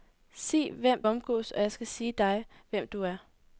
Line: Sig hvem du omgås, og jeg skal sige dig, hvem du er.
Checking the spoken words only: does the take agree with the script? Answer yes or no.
no